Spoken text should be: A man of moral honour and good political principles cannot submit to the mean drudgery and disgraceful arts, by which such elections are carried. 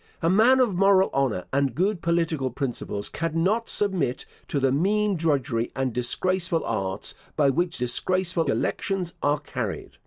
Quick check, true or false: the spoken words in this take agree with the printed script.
false